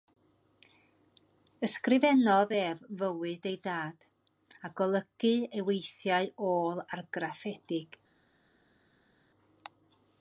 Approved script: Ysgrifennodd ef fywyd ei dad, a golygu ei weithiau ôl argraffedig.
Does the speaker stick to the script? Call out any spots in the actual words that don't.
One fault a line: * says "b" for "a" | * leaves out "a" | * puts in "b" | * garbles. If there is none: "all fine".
all fine